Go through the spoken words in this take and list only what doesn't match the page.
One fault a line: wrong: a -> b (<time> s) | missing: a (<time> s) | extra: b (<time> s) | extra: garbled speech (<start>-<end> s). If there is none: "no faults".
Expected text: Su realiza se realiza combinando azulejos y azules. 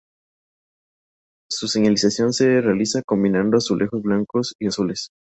wrong: realiza -> señalización (1.7 s)
extra: blancos (4.0 s)